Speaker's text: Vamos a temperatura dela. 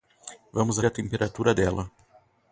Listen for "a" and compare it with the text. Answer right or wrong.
right